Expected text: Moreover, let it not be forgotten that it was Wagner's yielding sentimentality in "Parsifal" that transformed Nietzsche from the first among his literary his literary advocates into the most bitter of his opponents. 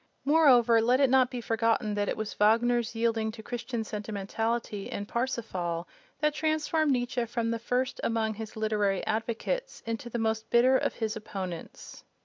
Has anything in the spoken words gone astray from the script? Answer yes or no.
yes